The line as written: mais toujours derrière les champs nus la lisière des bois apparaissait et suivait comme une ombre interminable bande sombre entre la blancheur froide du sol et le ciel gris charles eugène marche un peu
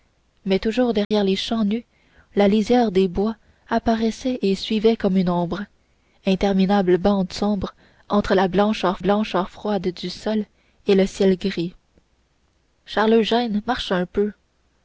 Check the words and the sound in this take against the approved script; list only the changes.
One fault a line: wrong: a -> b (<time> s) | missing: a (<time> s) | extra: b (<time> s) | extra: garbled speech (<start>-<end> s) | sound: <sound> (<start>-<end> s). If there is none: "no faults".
sound: dropout (1.0-1.1 s)
extra: blancheur (9.0 s)